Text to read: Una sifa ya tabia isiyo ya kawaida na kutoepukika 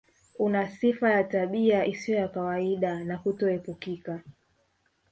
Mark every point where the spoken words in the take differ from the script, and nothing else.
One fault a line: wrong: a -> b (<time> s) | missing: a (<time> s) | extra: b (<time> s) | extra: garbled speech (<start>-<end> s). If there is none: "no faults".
no faults